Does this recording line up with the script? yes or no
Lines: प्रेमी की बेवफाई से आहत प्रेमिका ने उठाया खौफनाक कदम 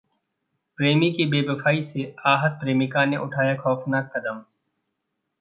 yes